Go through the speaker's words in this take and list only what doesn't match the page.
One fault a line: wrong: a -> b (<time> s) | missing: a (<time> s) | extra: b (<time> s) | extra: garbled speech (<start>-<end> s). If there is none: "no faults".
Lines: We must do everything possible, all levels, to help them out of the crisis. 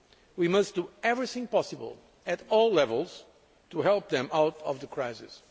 extra: at (2.2 s)